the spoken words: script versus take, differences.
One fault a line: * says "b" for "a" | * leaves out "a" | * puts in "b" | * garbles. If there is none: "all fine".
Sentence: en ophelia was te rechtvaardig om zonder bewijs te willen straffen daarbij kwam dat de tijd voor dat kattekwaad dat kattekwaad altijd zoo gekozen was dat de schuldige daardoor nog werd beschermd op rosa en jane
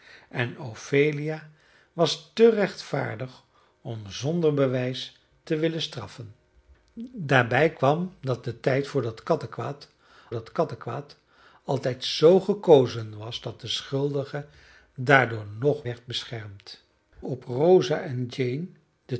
all fine